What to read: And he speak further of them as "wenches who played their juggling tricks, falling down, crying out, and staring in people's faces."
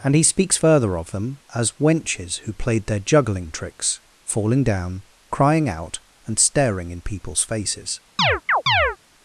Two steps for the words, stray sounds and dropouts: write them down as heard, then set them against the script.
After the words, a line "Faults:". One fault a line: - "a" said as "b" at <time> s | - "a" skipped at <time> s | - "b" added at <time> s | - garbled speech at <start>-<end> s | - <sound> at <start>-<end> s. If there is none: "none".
And he speaks further of them as "wenches who played their juggling tricks, falling down, crying out, and staring in people's faces."
Faults:
- "speak" said as "speaks" at 0.2 s
- chirp at 8.2-9.0 s